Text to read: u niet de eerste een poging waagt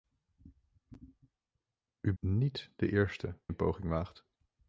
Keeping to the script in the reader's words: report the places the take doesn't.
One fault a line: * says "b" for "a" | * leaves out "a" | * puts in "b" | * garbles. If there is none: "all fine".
all fine